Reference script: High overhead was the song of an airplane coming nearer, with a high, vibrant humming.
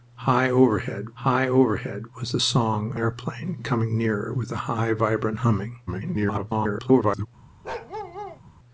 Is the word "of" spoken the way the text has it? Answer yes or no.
no